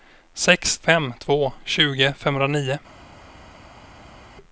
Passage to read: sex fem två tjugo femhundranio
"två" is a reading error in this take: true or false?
false